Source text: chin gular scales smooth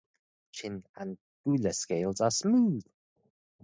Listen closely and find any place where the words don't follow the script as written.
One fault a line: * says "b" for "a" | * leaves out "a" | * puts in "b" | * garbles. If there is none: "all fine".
* puts in "and"
* puts in "are"